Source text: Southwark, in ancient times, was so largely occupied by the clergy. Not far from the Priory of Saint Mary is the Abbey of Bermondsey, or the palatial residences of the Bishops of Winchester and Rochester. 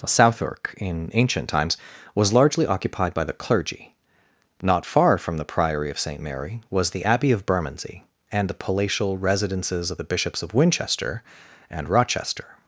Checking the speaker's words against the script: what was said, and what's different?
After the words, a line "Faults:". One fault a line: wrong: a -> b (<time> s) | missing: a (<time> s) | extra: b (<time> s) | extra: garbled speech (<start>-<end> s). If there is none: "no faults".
Southwark, in ancient times, was largely occupied by the clergy. Not far from the Priory of Saint Mary was the Abbey of Bermondsey, and the palatial residences of the Bishops of Winchester and Rochester.
Faults:
missing: so (2.3 s)
wrong: is -> was (6.7 s)
wrong: or -> and (8.3 s)